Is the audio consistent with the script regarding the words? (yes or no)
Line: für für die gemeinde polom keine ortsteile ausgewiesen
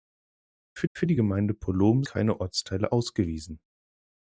yes